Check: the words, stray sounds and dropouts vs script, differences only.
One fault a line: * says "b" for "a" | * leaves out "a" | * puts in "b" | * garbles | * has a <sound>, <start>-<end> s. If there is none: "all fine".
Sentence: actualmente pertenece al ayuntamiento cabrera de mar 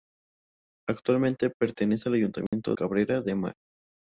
* has a dropout, 2.5-2.5 s